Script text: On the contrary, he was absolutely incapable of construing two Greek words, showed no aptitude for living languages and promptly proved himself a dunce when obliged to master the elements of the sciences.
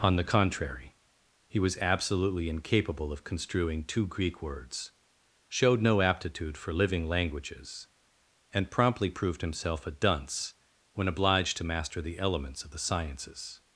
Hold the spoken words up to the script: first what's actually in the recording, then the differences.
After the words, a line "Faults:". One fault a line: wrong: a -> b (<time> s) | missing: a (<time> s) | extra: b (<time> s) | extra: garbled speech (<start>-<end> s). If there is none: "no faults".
On the contrary, he was absolutely incapable of construing two Greek words, showed no aptitude for living languages and promptly proved himself a dunce when obliged to master the elements of the sciences.
Faults:
no faults